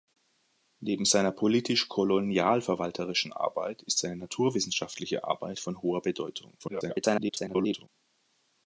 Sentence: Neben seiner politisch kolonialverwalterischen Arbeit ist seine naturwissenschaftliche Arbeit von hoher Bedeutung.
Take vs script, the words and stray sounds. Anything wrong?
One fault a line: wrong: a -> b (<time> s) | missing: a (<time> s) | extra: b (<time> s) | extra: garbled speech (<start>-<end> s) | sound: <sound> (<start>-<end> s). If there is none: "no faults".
extra: garbled speech (6.6-7.9 s)